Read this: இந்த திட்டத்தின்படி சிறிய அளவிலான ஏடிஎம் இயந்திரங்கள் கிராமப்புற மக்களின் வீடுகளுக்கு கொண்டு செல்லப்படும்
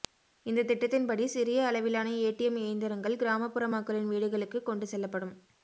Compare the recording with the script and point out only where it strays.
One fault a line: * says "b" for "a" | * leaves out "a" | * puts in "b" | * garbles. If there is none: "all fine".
all fine